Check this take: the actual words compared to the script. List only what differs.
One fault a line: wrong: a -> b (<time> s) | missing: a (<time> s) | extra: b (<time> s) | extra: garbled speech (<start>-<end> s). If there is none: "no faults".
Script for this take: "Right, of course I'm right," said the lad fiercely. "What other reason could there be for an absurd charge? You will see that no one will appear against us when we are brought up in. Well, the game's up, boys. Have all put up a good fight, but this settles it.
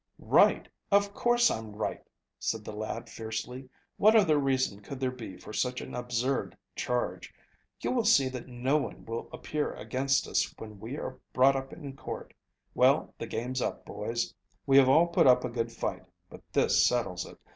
extra: such (5.5 s)
extra: court (12.0 s)
extra: We (14.6 s)